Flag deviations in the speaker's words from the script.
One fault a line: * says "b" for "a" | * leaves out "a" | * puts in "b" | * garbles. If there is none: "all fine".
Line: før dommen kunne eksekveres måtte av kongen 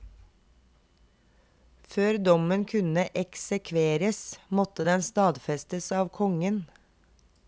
* puts in "den stadfestes"